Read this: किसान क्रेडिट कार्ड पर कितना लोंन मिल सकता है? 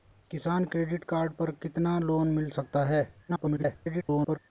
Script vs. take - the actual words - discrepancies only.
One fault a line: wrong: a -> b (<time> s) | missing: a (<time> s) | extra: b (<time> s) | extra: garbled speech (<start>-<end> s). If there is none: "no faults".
extra: garbled speech (3.3-4.4 s)